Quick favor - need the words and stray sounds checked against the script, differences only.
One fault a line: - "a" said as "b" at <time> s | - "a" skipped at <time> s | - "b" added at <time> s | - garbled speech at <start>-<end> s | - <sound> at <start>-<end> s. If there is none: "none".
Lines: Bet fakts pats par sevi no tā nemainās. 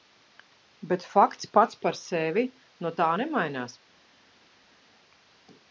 none